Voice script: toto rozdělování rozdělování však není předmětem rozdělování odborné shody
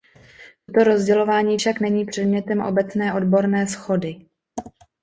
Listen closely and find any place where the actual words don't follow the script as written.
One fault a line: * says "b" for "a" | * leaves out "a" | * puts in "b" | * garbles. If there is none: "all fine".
* leaves out "rozdělování"
* says "obecné" for "rozdělování"